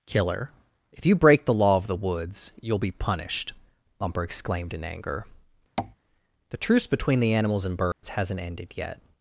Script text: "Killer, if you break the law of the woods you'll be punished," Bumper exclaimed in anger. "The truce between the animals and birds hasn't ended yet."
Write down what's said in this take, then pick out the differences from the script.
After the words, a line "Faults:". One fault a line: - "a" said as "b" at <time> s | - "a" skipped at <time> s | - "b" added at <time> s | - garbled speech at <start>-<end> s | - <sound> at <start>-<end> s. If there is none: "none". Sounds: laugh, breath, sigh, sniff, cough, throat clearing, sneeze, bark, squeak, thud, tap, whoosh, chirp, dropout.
"Killer, if you break the law of the woods you'll be punished," Bumper exclaimed in anger. "The truce between the animals and birds hasn't ended yet."
Faults:
- tap at 5.8-6.0 s
- dropout at 7.9-8.0 s